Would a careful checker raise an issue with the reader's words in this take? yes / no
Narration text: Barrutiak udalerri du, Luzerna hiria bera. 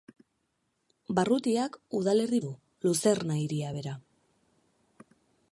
no